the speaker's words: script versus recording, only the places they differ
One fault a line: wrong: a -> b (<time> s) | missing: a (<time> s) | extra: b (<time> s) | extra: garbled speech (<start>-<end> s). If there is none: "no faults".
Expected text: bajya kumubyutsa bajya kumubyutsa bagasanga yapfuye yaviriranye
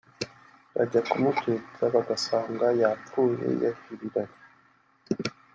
missing: bajya kumubyutsa (1.8 s)